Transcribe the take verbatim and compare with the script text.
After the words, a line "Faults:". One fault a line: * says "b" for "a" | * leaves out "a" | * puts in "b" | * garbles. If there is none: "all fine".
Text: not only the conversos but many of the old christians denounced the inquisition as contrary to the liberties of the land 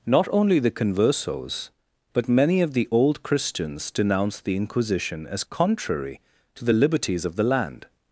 not only the conversos but many of the old christians denounced the inquisition as contrary to the liberties of the land
Faults:
all fine